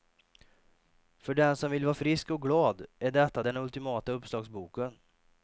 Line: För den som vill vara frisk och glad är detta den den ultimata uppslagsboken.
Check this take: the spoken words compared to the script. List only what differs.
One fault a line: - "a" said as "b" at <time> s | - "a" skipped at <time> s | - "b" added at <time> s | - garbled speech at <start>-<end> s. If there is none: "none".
- "den" skipped at 3.6 s